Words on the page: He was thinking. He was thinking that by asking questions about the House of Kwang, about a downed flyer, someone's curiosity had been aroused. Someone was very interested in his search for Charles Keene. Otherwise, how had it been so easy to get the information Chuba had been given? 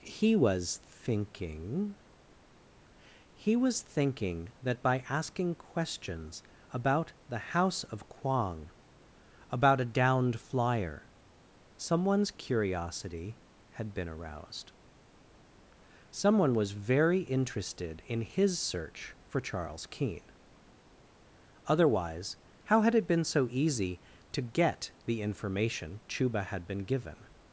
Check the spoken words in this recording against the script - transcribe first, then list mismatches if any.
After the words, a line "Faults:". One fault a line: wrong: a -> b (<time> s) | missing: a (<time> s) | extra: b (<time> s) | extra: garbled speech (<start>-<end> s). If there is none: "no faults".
He was thinking. He was thinking that by asking questions about the House of Kwang, about a downed flyer, someone's curiosity had been aroused. Someone was very interested in his search for Charles Keene. Otherwise, how had it been so easy to get the information Chuba had been given?
Faults:
no faults